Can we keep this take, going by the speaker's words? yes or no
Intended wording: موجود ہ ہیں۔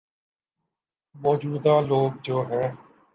no